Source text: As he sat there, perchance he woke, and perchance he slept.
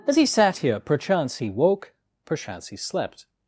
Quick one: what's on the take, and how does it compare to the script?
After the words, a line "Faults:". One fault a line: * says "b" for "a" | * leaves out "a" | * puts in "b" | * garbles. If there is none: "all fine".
As he sat here, perchance he woke, perchance he slept.
Faults:
* says "here" for "there"
* leaves out "and"